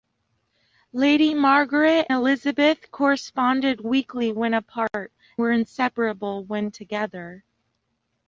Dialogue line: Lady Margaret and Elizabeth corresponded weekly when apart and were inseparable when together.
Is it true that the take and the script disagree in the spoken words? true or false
true